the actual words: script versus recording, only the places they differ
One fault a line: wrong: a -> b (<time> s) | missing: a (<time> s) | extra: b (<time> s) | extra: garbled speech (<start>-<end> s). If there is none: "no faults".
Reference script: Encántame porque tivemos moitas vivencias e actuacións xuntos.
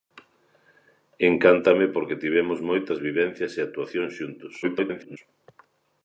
extra: garbled speech (4.6-5.2 s)